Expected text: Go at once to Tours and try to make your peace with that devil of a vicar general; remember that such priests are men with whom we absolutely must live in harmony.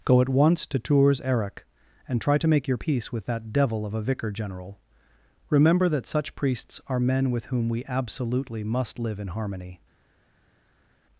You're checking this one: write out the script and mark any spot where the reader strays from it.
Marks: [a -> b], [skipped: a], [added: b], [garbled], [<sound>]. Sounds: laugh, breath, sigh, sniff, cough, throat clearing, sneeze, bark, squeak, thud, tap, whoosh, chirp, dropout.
Go at once to Tours [added: eric] and try to make your peace with that devil of a vicar general; remember that such priests are men with whom we absolutely must live in harmony.